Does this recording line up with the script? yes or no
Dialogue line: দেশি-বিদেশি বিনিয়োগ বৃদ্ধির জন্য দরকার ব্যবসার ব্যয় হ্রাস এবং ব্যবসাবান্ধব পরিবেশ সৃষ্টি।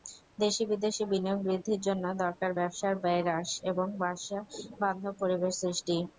yes